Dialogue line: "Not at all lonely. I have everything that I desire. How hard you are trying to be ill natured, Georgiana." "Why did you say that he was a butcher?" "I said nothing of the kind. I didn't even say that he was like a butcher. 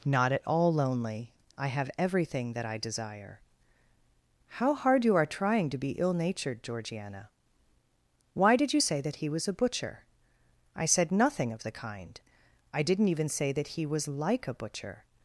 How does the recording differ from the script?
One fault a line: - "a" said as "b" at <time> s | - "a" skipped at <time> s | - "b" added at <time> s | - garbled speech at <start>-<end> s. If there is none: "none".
none